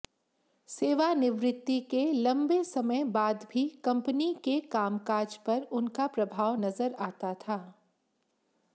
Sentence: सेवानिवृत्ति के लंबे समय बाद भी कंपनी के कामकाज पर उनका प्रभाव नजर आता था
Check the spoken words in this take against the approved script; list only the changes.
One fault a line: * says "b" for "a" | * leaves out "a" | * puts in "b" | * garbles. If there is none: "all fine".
all fine